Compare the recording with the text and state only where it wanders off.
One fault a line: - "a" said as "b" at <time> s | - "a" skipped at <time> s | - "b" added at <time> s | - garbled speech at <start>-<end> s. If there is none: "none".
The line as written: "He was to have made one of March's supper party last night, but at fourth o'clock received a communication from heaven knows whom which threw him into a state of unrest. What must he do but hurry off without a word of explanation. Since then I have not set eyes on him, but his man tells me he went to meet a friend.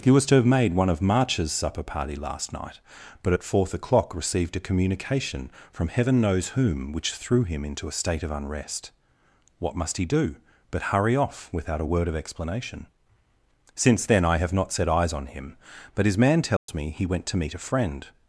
none